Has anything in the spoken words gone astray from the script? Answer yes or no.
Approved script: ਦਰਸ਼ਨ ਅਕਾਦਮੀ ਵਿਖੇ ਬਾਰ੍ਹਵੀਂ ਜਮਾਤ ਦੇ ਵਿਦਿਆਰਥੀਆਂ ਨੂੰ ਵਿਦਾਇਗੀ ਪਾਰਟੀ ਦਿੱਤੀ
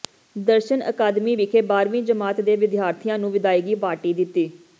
no